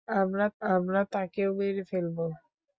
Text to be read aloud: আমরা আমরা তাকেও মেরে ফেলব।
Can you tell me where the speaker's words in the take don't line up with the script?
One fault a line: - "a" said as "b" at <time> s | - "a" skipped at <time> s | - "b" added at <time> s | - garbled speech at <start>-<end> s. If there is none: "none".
none